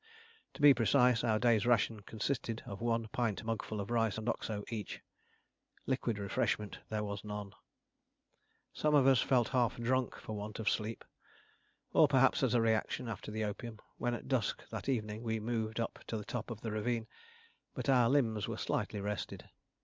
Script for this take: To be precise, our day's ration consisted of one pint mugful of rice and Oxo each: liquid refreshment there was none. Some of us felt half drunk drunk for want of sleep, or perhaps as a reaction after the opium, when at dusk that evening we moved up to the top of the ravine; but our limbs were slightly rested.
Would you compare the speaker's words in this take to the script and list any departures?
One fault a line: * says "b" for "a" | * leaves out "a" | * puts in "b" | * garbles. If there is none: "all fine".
* leaves out "drunk"